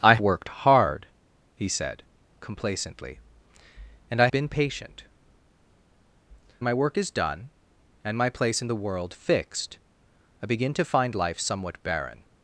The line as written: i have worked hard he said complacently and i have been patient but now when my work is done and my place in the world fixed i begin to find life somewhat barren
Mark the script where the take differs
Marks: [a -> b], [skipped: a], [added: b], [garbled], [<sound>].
i [skipped: have] worked hard he said complacently and i [skipped: have] been patient [skipped: but now when] my work is done and my place in the world fixed i begin to find life somewhat barren